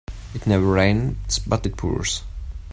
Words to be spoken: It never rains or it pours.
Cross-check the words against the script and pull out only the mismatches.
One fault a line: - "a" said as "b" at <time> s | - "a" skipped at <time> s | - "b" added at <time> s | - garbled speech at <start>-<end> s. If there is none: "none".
- "or" said as "but" at 1.4 s